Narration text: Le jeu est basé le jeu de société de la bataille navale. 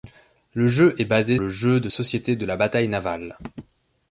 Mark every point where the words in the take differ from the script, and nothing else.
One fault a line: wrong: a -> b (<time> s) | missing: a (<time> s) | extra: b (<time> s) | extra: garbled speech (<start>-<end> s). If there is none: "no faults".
no faults